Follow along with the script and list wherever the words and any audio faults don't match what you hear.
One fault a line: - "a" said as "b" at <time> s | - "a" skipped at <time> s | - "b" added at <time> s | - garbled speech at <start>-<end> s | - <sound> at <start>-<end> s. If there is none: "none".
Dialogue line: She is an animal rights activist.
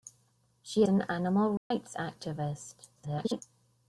- "is" skipped at 0.8 s
- dropout at 1.6-1.7 s
- garbled speech at 3.0-3.4 s